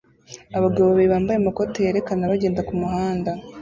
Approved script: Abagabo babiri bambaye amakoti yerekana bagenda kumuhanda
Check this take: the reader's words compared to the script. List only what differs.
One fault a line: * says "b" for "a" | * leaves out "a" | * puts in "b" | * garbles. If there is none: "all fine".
all fine